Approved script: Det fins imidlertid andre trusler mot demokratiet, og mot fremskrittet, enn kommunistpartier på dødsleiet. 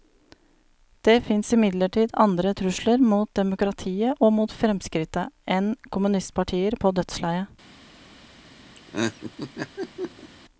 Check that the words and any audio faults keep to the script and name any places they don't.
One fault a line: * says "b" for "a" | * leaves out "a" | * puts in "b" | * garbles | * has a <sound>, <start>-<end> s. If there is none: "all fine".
* has a laugh, 8.8-10.3 s